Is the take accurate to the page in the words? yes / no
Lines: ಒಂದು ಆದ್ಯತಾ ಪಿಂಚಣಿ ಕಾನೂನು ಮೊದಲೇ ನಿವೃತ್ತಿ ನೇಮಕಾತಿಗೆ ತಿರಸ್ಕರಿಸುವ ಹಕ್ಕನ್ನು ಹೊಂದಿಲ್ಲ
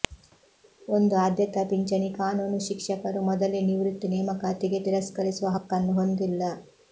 no